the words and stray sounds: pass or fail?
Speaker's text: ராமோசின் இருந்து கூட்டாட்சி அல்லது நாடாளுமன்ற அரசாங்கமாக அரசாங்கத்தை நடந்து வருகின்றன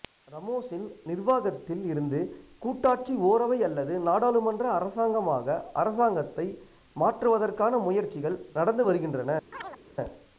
fail